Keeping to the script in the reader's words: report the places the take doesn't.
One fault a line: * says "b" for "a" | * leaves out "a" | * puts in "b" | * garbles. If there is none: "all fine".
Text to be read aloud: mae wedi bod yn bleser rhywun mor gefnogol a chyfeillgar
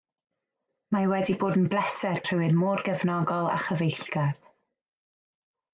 all fine